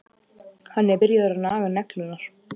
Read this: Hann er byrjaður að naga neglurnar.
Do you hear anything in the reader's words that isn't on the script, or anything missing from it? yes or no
no